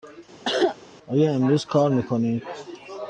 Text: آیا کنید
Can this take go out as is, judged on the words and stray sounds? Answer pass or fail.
fail